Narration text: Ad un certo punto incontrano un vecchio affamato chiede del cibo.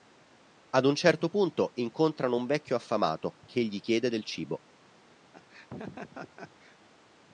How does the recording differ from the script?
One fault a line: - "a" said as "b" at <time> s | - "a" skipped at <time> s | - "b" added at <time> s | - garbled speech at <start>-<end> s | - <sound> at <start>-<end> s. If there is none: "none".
- "che gli" added at 3.4 s
- laugh at 5.3-6.8 s